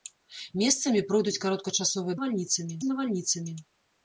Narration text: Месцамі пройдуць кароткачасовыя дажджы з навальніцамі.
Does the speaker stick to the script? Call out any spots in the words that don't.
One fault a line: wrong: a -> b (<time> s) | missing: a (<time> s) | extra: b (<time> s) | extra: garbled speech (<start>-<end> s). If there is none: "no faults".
wrong: дажджы -> навальніцамі (2.1 s)